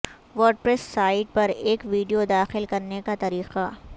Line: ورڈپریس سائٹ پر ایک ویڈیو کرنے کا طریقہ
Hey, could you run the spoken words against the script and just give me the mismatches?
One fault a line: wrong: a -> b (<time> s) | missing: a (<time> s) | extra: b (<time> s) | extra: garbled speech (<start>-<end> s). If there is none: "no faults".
extra: داخل (2.3 s)